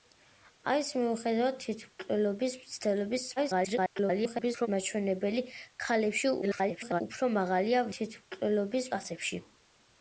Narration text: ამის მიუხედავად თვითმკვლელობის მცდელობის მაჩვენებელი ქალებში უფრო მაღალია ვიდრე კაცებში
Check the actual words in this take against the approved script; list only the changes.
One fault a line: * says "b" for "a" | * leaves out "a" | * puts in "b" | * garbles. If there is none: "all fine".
* garbles
* garbles
* says "თვითმკვლელობის" for "ვიდრე"